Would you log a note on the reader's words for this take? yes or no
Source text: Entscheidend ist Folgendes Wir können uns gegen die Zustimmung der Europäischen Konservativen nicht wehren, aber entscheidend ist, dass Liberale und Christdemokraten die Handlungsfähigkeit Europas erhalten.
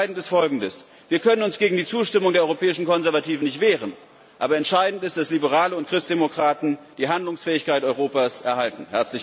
no